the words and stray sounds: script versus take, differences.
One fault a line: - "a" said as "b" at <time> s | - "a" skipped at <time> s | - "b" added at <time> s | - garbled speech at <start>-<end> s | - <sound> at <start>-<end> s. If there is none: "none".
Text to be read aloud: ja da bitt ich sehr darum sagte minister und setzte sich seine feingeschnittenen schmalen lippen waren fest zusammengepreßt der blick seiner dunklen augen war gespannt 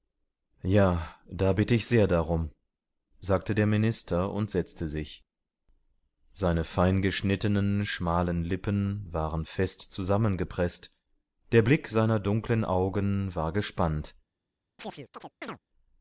- "der" added at 3.5 s
- chirp at 14.8-15.6 s